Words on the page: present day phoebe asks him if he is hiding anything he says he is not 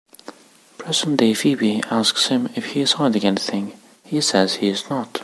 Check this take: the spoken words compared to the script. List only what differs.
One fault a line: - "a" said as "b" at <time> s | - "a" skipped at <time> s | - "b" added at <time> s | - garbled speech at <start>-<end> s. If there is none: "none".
none